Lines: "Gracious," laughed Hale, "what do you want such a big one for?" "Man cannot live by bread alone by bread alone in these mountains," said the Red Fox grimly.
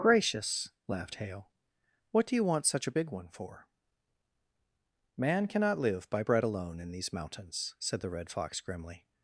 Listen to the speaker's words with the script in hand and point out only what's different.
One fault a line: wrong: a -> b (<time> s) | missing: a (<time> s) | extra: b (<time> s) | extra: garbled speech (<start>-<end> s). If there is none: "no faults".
missing: by bread alone (6.8 s)